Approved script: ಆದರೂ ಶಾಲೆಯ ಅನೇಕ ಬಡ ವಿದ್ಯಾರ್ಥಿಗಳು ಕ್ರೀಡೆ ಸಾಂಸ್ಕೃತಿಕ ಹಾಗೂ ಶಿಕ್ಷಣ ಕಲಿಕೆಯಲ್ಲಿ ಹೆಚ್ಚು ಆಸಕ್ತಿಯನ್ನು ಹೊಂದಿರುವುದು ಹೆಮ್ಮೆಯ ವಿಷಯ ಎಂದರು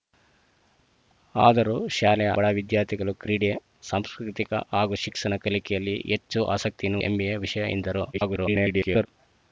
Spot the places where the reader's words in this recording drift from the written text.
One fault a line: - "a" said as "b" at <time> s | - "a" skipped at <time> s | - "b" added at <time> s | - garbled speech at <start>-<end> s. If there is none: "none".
- "ಅನೇಕ" skipped at 2.3 s
- "ಹೊಂದಿರುವುದು" skipped at 7.0 s
- garbled speech at 8.1-9.1 s